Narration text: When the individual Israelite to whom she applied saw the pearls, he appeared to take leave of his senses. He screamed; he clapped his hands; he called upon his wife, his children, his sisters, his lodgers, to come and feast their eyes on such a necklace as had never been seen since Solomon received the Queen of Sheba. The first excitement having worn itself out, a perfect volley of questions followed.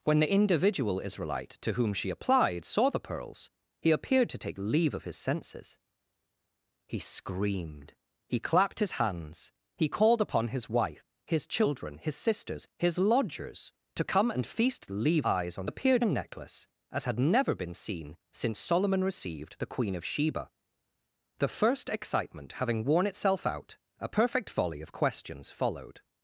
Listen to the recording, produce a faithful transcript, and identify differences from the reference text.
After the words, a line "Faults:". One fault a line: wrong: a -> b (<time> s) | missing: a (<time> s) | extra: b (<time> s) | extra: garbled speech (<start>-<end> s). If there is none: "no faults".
When the individual Israelite to whom she applied saw the pearls, he appeared to take leave of his senses. He screamed; he clapped his hands; he called upon his wife, his children, his sisters, his lodgers, to come and feast leave eyes on appeared a necklace as had never been seen since Solomon received the Queen of Sheba. The first excitement having worn itself out, a perfect volley of questions followed.
Faults:
wrong: their -> leave (14.9 s)
wrong: such -> appeared (15.6 s)